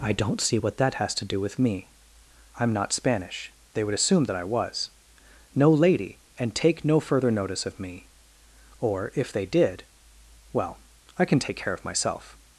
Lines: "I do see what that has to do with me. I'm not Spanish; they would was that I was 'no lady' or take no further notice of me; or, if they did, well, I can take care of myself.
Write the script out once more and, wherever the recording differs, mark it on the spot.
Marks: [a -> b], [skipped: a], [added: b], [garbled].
"I [do -> don't] see what that has to do with me. I'm not Spanish; they would [was -> assume] that I was 'no lady' [or -> and] take no further notice of me; or, if they did, well, I can take care of myself.